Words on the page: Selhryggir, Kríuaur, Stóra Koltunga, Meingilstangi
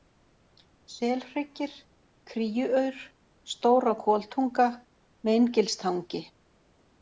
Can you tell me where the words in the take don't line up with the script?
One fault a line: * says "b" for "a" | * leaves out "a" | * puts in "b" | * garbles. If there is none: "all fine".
all fine